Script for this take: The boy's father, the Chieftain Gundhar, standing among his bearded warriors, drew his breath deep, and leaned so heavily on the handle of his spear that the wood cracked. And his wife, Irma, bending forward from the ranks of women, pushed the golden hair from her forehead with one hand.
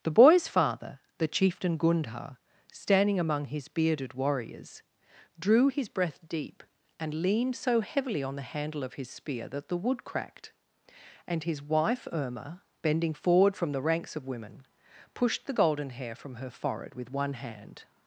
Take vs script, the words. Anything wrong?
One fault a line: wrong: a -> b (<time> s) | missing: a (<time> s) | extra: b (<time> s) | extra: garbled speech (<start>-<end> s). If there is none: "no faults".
no faults